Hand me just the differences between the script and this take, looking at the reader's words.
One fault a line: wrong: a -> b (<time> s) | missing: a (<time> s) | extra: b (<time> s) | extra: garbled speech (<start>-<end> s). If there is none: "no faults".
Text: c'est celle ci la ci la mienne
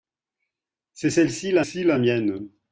no faults